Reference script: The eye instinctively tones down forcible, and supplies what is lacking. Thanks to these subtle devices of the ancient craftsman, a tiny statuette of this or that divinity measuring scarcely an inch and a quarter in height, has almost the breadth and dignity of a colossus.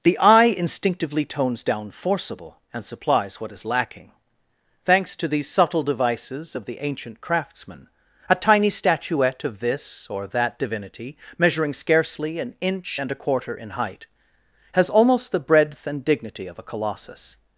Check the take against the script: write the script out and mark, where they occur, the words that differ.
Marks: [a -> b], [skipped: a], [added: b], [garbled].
The eye instinctively tones down forcible, and supplies what is lacking. Thanks to these subtle devices of the ancient craftsman, a tiny statuette of this or that divinity measuring scarcely an inch and a quarter in height, has almost the breadth and dignity of a colossus.